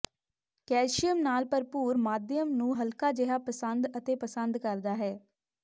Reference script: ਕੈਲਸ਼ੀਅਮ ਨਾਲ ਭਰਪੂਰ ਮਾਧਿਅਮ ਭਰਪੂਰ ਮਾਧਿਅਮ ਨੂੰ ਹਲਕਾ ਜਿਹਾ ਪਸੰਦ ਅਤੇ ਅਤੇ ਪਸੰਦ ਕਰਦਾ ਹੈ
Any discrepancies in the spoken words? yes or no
yes